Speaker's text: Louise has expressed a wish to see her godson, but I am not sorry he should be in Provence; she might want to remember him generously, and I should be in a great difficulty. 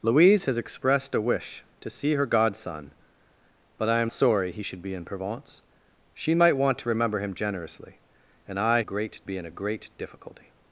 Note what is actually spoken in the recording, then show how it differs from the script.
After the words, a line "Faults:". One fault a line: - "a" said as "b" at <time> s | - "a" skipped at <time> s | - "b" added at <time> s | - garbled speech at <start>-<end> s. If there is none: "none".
Louise has expressed a wish to see her godson, but I am sorry he should be in Provence; she might want to remember him generously, and I great be in a great difficulty.
Faults:
- "not" skipped at 4.1 s
- "should" said as "great" at 8.8 s